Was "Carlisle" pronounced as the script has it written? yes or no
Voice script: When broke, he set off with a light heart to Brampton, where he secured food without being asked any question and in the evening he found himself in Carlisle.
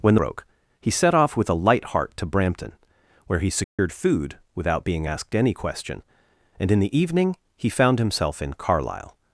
yes